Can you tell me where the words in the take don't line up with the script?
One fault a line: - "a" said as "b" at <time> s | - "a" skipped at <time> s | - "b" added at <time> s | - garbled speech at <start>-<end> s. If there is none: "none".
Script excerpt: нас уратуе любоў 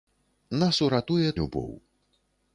none